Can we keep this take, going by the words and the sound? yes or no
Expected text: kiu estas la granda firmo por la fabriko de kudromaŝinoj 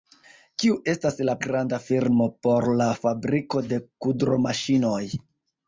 yes